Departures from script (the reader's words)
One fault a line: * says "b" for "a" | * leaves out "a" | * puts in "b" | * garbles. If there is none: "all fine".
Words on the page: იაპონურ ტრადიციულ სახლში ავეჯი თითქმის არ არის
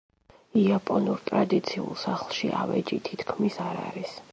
all fine